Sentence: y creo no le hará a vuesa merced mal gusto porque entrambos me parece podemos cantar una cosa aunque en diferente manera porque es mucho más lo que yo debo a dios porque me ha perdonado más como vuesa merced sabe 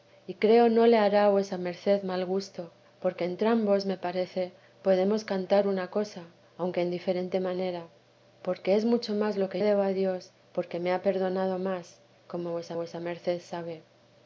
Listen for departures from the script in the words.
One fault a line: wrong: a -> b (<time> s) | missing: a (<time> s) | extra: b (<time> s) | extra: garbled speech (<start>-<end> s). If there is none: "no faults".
missing: yo (9.6 s)
extra: vuesa (12.8 s)